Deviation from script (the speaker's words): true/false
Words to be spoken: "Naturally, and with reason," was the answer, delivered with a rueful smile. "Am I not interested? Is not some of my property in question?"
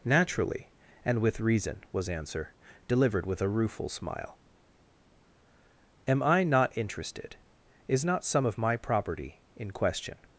true